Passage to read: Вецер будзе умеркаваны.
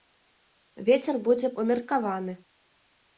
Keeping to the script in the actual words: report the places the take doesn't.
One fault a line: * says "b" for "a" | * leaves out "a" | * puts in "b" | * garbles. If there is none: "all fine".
all fine